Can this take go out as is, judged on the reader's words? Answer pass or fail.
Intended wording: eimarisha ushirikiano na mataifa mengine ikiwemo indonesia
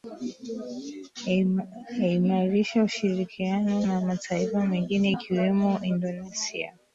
pass